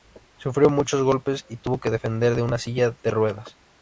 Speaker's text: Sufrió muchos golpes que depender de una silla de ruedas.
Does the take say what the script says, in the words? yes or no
no